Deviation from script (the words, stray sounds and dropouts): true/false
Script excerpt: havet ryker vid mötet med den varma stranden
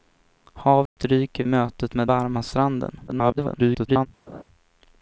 true